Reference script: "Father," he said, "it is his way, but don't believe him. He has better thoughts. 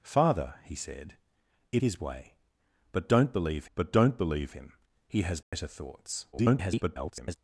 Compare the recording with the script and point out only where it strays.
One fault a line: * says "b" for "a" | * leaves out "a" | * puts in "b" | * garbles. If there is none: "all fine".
* leaves out "is"
* puts in "but don't believe"
* garbles